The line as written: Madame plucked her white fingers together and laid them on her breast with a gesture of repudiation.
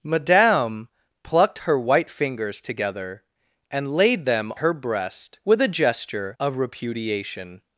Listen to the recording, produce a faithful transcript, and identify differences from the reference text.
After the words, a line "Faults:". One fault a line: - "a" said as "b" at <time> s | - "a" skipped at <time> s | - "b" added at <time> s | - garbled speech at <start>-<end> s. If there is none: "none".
Madame plucked her white fingers together and laid them her breast with a gesture of repudiation.
Faults:
- "on" skipped at 4.5 s